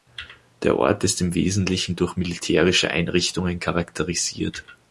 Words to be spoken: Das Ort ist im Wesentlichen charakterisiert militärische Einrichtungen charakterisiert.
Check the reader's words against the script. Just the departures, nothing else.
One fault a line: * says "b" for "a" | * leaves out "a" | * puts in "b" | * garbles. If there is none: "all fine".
* says "Der" for "Das"
* says "durch" for "charakterisiert"